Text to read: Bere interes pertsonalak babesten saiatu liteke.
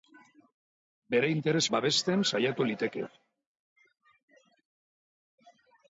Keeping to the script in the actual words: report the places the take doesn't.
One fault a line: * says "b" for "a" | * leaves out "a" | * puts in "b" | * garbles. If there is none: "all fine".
* leaves out "pertsonalak"